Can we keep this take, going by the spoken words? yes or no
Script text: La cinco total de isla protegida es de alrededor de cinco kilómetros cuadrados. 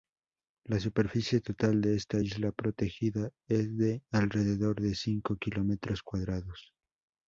no